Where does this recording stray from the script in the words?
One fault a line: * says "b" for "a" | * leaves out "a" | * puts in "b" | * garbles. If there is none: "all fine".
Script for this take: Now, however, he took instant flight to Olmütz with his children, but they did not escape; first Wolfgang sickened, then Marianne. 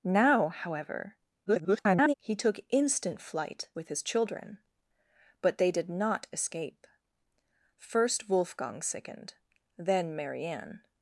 * garbles
* leaves out "to Olmütz"